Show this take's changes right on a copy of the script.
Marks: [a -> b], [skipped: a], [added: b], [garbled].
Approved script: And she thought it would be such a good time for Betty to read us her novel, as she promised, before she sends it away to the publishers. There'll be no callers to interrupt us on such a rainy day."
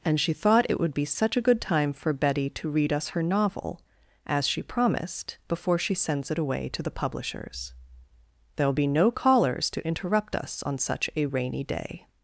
And she thought it would be such a good time for Betty to read us her novel, as she promised, before she sends it away to the publishers. There'll be no callers to interrupt us on such a rainy day."